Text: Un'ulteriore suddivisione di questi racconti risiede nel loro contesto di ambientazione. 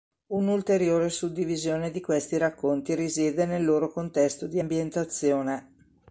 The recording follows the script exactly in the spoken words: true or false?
true